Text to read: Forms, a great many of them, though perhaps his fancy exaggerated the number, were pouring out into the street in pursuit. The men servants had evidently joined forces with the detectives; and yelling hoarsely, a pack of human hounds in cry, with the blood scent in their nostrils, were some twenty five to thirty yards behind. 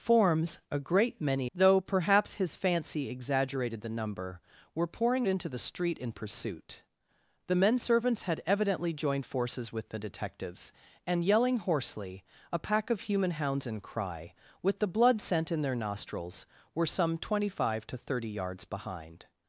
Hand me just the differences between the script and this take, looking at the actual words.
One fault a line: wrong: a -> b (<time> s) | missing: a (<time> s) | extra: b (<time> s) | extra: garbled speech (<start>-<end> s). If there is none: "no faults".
missing: of them (1.5 s)
missing: out (5.3 s)